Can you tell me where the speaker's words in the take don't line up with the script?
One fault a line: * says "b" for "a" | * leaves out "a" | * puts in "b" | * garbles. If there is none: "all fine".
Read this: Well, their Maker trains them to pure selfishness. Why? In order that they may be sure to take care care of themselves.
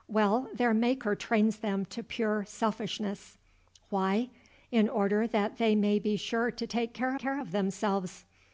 all fine